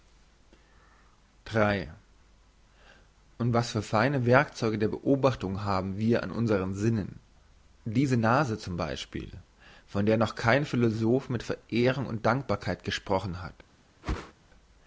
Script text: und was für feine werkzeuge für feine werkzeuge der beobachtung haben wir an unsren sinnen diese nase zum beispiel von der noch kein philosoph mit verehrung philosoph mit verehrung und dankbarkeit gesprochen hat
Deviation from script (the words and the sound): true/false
true